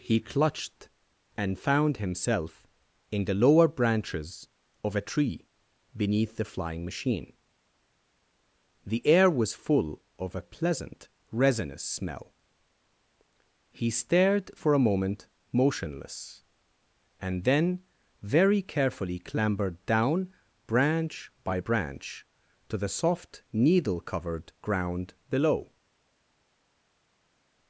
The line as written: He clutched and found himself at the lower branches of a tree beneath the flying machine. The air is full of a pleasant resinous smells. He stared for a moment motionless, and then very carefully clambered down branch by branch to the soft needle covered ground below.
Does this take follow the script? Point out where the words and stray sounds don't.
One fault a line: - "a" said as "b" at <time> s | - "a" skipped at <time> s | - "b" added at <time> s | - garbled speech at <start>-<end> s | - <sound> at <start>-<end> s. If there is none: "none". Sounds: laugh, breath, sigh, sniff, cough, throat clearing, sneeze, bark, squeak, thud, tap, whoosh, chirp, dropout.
- "at" said as "in" at 3.1 s
- "is" said as "was" at 9.3 s
- "smells" said as "smell" at 11.8 s